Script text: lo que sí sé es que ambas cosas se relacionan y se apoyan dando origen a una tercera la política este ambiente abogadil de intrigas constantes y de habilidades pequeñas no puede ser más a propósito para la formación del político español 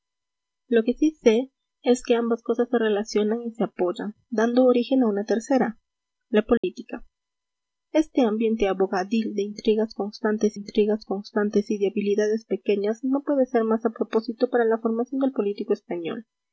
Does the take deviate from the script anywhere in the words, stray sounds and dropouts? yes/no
yes